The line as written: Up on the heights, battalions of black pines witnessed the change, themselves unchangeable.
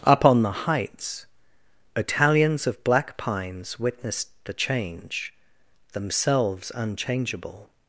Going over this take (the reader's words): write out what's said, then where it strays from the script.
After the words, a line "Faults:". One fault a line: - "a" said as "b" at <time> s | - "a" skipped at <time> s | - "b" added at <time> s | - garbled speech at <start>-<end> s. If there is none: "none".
Up on the heights, battalions of black pines witnessed the change, themselves unchangeable.
Faults:
none